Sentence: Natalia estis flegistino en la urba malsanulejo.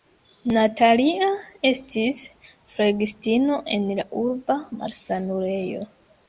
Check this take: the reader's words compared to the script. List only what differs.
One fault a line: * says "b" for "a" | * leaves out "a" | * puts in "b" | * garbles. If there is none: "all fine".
all fine